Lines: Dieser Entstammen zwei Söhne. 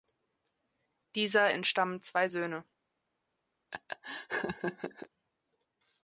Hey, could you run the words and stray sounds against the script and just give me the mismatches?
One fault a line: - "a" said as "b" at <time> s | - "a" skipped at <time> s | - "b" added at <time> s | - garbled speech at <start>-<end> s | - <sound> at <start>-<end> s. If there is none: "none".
- laugh at 3.7-5.1 s